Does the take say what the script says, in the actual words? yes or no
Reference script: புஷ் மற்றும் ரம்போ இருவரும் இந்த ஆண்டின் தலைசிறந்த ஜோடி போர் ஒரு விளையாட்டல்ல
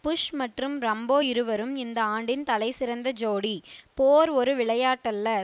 yes